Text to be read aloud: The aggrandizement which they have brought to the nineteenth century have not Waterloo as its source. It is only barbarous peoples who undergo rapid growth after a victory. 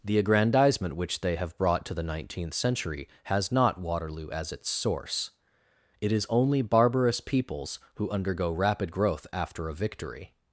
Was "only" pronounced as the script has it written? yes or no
yes